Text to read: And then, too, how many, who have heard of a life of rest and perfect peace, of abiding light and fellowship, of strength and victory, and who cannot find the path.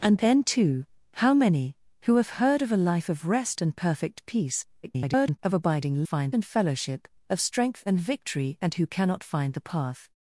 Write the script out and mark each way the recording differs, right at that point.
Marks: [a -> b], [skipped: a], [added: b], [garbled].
And then, too, how many, who have heard of a life of rest and perfect peace, [garbled] of abiding [light -> find] and fellowship, of strength and victory, and who cannot find the path.